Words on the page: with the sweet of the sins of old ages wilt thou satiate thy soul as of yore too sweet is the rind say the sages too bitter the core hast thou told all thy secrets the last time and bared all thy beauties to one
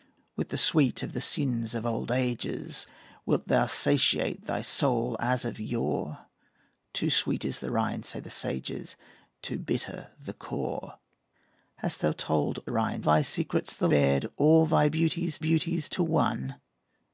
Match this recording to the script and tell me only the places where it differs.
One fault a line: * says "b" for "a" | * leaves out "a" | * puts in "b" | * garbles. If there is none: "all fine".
* says "rind" for "all"
* leaves out "last time and"
* puts in "beauties"